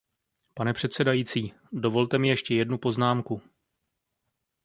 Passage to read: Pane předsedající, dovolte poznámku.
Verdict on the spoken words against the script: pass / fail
fail